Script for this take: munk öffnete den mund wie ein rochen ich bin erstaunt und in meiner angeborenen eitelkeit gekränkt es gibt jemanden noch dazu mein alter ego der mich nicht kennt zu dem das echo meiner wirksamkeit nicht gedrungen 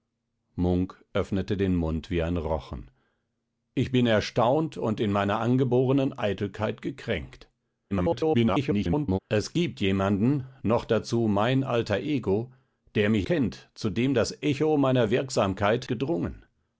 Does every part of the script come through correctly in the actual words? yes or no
no